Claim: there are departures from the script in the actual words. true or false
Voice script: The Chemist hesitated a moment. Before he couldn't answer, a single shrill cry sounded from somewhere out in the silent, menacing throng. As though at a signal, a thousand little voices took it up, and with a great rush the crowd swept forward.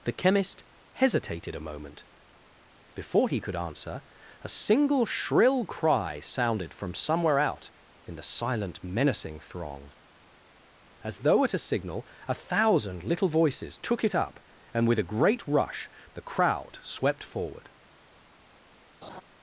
true